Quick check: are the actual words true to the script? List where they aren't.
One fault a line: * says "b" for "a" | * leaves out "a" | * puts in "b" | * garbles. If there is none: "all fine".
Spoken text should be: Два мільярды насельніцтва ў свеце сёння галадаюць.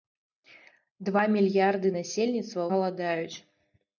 * leaves out "ў свеце сёння"